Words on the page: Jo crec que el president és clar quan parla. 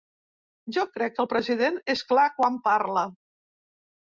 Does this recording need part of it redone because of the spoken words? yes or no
no